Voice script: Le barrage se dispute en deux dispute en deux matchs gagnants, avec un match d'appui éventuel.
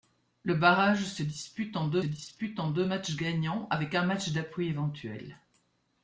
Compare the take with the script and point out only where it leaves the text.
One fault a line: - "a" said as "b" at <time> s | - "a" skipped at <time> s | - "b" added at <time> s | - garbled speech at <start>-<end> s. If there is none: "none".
none